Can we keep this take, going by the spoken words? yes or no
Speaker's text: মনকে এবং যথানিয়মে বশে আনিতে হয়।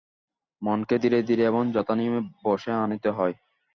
no